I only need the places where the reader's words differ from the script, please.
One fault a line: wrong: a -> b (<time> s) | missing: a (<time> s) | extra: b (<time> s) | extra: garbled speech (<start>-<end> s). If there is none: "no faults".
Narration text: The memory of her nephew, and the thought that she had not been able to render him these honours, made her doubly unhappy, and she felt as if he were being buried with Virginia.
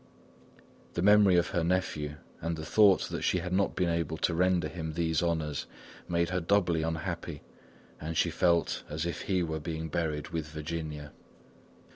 no faults